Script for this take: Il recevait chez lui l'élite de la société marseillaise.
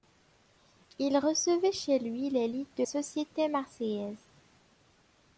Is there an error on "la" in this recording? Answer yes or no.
yes